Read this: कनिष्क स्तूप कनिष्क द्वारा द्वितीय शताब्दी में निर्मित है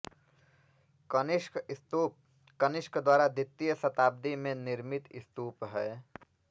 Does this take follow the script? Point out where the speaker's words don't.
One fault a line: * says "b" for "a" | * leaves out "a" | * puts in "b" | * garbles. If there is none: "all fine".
* puts in "स्तूप"